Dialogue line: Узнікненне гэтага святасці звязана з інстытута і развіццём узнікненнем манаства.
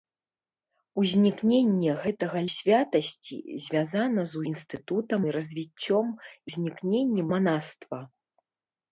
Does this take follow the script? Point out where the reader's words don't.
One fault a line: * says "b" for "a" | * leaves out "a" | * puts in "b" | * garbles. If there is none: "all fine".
all fine